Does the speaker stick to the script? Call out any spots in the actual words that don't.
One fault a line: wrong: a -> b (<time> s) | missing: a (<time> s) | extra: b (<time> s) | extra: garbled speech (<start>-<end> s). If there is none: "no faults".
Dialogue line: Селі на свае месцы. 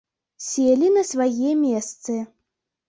no faults